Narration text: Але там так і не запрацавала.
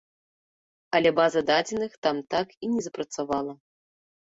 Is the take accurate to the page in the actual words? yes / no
no